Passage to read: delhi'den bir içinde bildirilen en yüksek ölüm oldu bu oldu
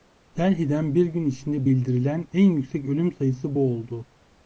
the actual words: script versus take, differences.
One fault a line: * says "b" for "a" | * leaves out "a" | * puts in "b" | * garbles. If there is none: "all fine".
* puts in "gün"
* says "sayısı" for "oldu"